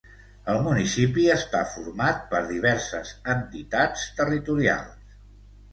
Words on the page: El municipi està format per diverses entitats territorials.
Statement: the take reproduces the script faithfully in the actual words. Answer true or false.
true